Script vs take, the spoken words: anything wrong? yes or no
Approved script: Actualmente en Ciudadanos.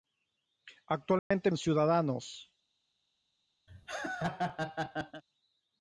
no